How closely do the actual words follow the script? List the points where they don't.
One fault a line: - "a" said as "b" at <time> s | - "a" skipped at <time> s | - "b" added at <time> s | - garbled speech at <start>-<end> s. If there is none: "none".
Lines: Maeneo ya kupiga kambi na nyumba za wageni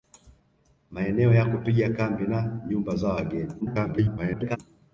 - garbled speech at 3.6-4.6 s